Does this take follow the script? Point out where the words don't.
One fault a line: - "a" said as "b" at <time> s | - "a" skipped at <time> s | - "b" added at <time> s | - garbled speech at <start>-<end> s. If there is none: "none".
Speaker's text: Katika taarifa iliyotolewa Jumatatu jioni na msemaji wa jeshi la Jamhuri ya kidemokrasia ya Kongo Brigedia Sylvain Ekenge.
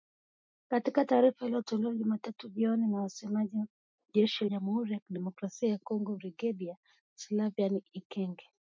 - "la" skipped at 4.5 s